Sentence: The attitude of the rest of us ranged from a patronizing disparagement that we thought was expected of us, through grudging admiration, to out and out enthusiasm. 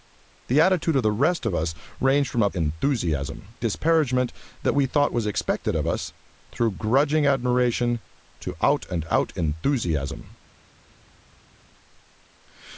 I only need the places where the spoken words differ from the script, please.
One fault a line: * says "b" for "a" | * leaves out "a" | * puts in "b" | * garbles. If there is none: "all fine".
* says "enthusiasm" for "patronizing"